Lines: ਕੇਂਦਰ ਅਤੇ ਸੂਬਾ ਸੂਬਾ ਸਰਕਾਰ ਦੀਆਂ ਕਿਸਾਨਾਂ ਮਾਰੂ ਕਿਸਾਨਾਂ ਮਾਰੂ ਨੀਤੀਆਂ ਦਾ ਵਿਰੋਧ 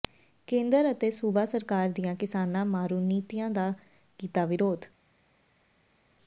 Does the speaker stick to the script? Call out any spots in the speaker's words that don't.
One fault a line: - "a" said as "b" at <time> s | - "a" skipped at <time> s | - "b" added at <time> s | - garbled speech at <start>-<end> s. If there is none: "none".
- "ਸੂਬਾ" skipped at 1.4 s
- "ਕਿਸਾਨਾਂ ਮਾਰੂ" skipped at 3.0 s
- "ਕੀਤਾ" added at 4.2 s